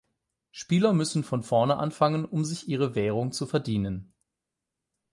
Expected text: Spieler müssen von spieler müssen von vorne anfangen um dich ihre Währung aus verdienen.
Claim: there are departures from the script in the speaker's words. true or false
true